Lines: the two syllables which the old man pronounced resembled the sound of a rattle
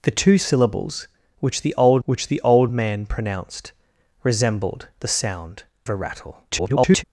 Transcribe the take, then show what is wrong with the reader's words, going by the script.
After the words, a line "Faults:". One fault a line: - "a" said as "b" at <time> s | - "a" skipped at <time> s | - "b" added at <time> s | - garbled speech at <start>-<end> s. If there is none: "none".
the two syllables which the old which the old man pronounced resembled the sound a rattle [garbled]
Faults:
- "which the old" added at 2.1 s
- "of" skipped at 5.6 s
- garbled speech at 6.5-7.0 s